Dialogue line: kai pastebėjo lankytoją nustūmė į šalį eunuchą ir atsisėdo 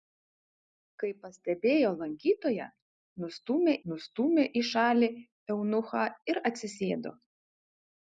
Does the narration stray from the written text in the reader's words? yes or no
yes